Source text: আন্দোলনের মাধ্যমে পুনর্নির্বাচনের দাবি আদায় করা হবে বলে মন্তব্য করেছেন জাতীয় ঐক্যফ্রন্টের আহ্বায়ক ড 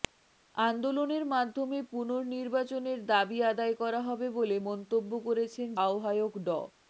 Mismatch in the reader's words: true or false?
true